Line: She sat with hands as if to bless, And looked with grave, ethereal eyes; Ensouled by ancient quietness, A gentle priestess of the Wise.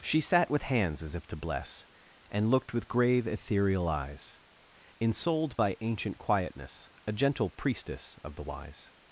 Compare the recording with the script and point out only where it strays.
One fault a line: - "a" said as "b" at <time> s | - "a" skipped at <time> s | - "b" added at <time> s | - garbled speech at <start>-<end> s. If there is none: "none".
none